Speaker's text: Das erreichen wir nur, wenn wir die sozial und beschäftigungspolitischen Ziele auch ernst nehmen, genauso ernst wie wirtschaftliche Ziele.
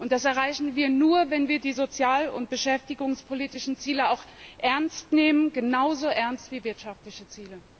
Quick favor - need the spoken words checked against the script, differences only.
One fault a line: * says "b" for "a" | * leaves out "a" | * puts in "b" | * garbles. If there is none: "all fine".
all fine